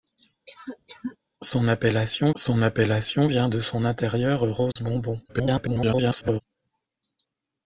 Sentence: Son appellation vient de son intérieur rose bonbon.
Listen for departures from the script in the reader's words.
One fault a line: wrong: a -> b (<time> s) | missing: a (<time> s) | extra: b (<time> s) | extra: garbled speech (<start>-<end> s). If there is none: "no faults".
extra: son appellation (2.4 s)
extra: garbled speech (5.3-6.4 s)